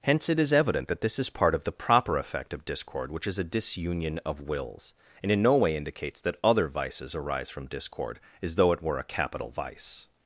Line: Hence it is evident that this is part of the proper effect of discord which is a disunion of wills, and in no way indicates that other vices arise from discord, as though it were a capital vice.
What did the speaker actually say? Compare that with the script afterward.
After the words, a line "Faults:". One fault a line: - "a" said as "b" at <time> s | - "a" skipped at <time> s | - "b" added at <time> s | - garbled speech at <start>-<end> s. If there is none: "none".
Hence it is evident that this is part of the proper effect of discord which is a disunion of wills, and in no way indicates that other vices arise from discord, as though it were a capital vice.
Faults:
none